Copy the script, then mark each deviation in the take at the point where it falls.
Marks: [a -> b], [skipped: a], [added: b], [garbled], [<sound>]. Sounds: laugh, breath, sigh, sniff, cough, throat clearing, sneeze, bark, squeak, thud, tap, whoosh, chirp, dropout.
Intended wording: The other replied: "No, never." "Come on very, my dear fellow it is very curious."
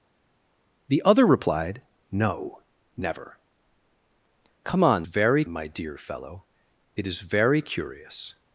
The other replied: "No, never." "Come on very, my dear fellow it is very curious."